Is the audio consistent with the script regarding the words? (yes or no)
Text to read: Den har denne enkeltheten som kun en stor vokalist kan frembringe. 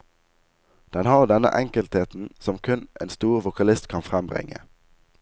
yes